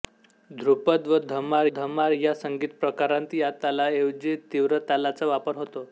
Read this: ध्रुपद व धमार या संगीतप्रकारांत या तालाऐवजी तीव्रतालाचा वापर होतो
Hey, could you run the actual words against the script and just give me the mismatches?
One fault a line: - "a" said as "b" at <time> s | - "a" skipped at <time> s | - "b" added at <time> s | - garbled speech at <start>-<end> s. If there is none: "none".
- "धमार" added at 1.7 s